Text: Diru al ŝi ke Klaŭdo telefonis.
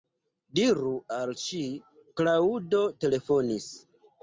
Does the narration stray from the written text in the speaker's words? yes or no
yes